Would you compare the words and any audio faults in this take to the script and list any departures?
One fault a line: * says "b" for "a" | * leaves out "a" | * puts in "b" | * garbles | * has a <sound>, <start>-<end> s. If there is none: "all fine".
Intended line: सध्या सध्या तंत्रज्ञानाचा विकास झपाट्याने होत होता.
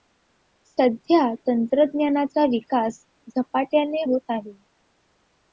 * leaves out "सध्या"
* says "आहे" for "होता"